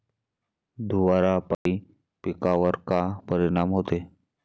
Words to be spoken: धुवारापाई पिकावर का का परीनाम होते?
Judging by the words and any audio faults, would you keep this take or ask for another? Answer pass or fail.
fail